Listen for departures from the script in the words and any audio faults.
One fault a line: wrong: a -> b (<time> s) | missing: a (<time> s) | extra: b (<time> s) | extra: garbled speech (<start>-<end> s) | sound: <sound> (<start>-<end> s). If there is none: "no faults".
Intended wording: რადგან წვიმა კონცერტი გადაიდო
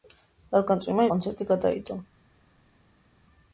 no faults